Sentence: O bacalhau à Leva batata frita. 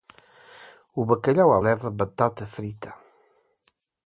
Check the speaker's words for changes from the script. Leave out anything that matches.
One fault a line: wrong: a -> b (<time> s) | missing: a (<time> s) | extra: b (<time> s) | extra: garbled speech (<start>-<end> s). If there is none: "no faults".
no faults